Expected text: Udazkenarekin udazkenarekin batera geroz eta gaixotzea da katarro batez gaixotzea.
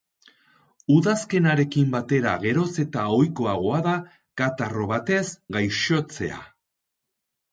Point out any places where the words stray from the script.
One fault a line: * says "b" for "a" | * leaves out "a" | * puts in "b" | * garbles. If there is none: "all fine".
* leaves out "udazkenarekin"
* says "ohikoagoa" for "gaixotzea"